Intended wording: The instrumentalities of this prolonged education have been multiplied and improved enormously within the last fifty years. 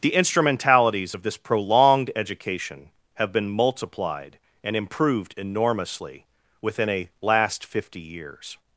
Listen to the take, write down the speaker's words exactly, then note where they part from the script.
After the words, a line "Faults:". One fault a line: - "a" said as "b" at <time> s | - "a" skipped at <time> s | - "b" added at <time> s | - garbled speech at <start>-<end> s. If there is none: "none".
The instrumentalities of this prolonged education have been multiplied and improved enormously within a last fifty years.
Faults:
- "the" said as "a" at 6.9 s